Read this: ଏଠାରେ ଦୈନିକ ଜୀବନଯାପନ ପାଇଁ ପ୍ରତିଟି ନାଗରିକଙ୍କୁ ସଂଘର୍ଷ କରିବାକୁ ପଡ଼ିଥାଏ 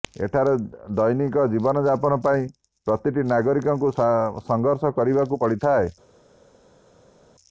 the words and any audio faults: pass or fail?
pass